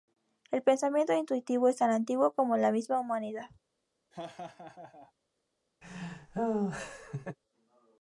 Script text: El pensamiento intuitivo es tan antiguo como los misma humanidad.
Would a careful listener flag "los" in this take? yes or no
yes